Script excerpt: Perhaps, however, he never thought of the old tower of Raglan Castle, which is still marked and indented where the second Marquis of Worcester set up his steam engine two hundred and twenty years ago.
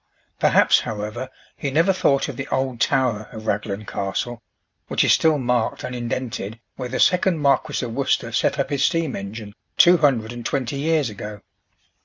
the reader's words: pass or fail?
pass